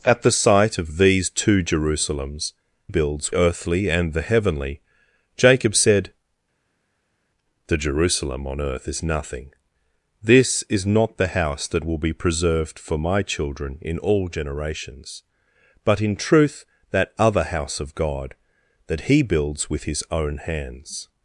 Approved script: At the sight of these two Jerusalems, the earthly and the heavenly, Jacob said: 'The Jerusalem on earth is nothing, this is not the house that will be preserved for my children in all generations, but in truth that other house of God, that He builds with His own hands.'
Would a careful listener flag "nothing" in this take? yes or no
no